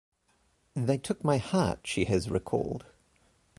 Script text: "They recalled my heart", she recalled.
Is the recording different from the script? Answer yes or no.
yes